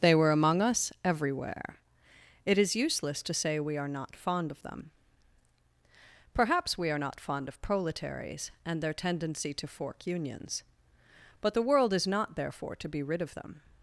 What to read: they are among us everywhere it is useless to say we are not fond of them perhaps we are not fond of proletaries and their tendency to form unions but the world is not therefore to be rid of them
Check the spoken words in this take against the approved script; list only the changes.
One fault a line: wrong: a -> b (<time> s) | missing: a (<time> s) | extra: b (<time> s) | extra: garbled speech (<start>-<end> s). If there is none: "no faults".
wrong: are -> were (0.1 s)
wrong: form -> fork (9.7 s)